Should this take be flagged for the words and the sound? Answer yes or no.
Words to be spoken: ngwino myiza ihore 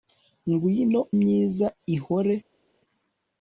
no